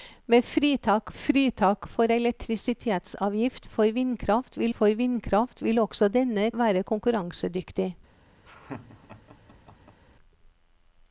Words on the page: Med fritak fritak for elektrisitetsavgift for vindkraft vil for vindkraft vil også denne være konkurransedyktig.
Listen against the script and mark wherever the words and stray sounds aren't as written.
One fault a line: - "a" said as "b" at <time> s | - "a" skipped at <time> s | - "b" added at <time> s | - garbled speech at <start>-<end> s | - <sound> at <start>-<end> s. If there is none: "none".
- laugh at 8.4-10.0 s